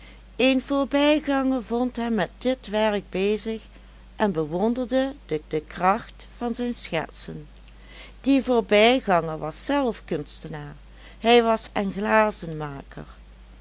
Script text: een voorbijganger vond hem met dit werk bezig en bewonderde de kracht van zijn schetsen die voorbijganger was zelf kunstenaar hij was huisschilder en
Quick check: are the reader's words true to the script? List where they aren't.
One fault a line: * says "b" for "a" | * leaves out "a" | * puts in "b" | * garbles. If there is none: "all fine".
* puts in "de"
* leaves out "huisschilder"